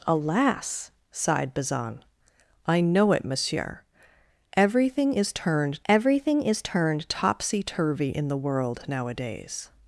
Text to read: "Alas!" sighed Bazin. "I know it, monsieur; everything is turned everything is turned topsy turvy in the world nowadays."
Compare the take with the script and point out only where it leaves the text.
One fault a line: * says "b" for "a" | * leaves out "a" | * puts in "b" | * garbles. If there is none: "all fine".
all fine